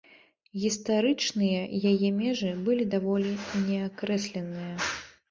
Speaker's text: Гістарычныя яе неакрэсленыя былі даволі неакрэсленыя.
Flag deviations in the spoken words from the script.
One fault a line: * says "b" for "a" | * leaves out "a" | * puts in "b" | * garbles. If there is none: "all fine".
* says "межы" for "неакрэсленыя"